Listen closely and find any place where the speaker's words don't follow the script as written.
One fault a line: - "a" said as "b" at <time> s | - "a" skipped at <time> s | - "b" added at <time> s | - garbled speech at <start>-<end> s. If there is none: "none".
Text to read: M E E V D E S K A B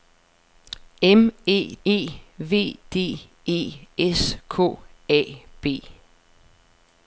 none